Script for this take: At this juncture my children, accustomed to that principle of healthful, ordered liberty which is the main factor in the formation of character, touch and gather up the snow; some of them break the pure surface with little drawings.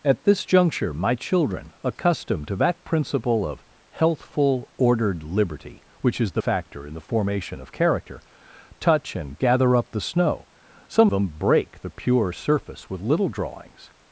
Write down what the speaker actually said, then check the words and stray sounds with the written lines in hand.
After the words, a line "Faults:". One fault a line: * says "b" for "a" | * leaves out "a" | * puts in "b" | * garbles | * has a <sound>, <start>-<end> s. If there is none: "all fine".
At this juncture my children, accustomed to that principle of healthful, ordered liberty which is the factor in the formation of character, touch and gather up the snow; some them break the pure surface with little drawings.
Faults:
* leaves out "main"
* leaves out "of"